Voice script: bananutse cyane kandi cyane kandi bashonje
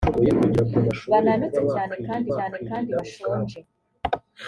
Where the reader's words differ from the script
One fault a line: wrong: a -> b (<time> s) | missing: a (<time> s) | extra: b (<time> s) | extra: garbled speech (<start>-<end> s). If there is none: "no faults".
no faults